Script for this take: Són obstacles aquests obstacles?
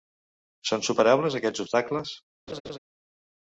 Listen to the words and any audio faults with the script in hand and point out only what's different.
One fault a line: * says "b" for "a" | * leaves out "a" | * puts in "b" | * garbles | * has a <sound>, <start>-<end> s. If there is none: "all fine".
* says "superables" for "obstacles"
* has a laugh, 2.5-2.8 s